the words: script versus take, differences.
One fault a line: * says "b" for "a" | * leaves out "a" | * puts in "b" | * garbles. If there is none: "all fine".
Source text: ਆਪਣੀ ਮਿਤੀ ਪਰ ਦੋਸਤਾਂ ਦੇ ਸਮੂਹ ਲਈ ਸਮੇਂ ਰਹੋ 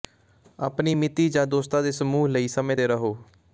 * says "ਜਾਂ" for "ਪਰ"
* puts in "ਤੇ"